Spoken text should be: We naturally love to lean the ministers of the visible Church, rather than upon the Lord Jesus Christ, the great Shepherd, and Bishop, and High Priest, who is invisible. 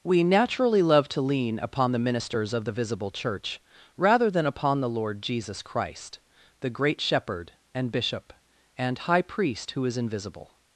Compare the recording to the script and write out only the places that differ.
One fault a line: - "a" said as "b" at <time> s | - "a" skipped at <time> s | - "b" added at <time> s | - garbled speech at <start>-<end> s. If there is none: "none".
- "upon" added at 1.6 s